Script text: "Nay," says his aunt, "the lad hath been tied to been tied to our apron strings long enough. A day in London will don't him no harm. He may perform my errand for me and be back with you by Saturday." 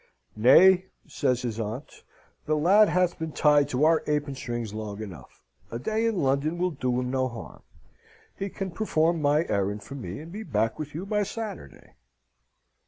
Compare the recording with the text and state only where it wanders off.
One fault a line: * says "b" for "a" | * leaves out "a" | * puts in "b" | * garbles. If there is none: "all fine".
* leaves out "been tied to"
* says "do" for "don't"
* says "can" for "may"